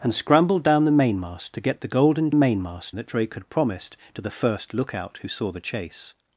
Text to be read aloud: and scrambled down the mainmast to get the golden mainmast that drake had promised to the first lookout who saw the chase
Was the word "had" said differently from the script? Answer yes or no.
no